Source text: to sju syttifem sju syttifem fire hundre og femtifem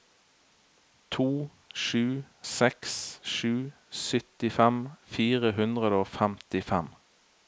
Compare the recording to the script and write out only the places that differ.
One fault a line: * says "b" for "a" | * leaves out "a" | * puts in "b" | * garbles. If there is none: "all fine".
* says "seks" for "syttifem"